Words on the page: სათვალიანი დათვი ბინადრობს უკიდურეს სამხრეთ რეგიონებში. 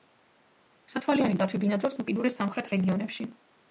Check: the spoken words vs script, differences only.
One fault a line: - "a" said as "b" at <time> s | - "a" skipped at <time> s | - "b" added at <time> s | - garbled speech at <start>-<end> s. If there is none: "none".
none